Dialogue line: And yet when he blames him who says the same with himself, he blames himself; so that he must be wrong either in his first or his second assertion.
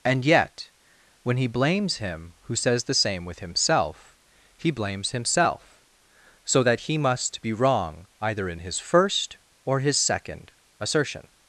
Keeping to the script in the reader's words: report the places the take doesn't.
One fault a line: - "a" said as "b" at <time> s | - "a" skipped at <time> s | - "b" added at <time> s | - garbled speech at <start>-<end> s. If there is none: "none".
none